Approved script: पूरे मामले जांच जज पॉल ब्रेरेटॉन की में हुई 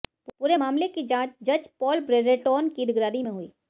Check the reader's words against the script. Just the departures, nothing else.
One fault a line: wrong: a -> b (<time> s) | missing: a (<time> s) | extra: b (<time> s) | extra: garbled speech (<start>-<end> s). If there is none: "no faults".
extra: की (0.9 s)
extra: निगरानी (2.9 s)